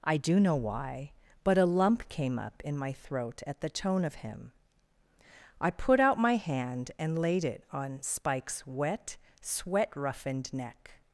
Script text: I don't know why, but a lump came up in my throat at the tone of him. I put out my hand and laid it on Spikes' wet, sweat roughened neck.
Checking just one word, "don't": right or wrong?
wrong